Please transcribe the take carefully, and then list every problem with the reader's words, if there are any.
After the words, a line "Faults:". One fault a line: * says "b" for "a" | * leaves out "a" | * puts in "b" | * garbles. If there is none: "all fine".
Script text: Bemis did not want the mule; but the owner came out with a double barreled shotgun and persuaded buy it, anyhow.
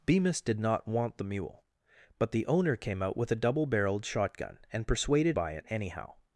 Bemis did not want the mule; but the owner came out with a double barreled shotgun and persuaded buy it, anyhow.
Faults:
all fine